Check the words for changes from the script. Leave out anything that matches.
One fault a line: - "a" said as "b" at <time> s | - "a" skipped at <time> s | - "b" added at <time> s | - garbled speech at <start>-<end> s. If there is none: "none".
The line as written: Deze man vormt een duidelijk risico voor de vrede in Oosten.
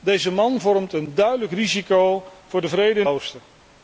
none